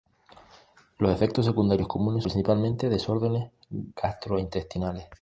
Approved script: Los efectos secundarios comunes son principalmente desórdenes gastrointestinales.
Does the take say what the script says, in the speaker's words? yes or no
no